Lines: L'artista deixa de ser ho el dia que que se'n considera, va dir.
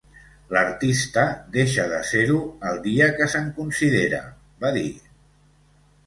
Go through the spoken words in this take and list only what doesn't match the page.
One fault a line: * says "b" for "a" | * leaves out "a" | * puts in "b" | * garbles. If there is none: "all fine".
* leaves out "que"